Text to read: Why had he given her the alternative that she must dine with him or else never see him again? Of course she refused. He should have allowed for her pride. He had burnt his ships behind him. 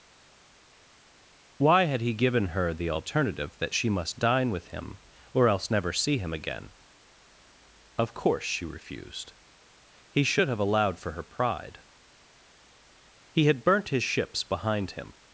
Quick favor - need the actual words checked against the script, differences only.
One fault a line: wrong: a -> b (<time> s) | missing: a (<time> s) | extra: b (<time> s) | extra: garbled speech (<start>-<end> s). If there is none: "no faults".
no faults